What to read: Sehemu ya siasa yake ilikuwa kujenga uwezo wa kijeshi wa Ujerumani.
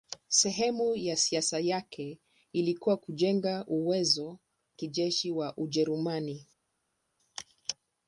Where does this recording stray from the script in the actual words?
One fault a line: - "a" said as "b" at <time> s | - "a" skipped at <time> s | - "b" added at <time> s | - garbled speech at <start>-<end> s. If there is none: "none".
- "wa" skipped at 4.4 s